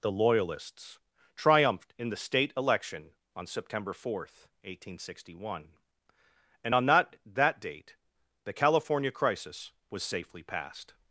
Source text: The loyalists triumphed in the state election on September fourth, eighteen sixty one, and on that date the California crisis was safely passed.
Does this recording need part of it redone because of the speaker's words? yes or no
yes